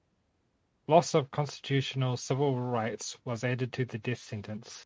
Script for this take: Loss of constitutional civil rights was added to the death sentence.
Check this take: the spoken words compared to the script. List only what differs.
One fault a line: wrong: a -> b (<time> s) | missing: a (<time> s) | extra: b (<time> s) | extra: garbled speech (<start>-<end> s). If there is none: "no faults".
no faults